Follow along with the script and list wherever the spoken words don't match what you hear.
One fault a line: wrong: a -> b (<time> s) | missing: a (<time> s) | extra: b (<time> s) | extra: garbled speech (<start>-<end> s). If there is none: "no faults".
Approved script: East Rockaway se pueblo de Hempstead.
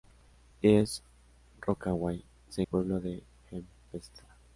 no faults